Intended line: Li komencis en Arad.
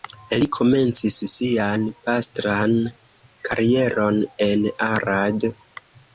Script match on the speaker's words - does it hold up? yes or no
no